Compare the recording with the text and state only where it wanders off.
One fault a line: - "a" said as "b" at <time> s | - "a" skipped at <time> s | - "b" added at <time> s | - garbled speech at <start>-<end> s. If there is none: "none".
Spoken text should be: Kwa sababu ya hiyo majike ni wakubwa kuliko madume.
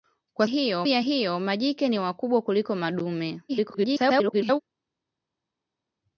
- "sababu" said as "hiyo" at 0.4 s
- garbled speech at 3.5-4.6 s